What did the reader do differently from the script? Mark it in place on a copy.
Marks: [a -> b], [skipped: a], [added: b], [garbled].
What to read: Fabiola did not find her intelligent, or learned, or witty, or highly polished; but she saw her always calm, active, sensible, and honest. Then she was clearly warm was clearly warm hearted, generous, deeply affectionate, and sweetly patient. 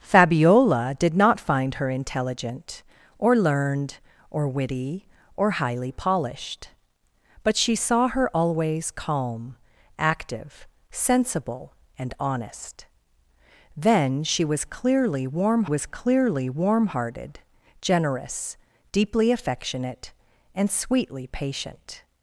Fabiola did not find her intelligent, or learned, or witty, or highly polished; but she saw her always calm, active, sensible, and honest. Then she was clearly warm was clearly warm hearted, generous, deeply affectionate, and sweetly patient.